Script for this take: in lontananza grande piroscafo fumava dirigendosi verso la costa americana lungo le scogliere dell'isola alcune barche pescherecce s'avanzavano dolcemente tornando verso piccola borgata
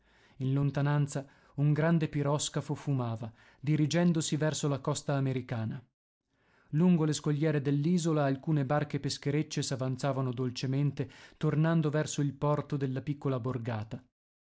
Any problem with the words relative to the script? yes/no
yes